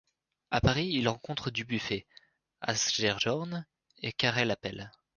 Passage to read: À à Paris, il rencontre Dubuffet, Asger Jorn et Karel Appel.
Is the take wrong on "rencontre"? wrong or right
right